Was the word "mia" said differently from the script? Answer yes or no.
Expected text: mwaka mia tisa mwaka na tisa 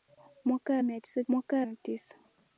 no